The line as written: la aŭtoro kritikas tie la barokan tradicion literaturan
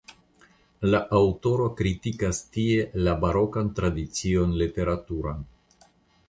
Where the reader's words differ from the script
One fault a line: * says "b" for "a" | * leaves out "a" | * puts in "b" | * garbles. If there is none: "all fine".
all fine